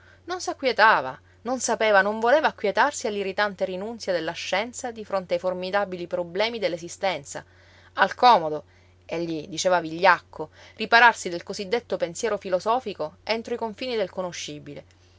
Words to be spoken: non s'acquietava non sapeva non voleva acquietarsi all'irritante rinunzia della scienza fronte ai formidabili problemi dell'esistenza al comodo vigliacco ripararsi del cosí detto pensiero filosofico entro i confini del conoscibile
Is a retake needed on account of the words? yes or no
yes